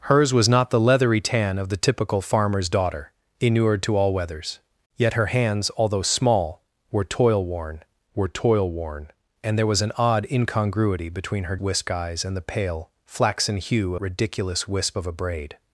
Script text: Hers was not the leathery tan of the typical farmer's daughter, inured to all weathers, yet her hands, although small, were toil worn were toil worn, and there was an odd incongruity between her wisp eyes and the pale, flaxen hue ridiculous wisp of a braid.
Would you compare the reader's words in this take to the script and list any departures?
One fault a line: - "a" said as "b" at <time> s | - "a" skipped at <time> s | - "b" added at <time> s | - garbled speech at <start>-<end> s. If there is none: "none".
none